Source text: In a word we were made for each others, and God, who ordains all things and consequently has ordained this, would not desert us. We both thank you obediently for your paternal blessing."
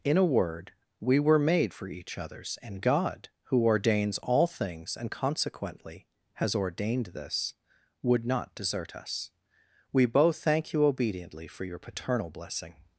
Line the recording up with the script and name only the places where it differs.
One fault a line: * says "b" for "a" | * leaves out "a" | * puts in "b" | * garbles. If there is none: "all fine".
all fine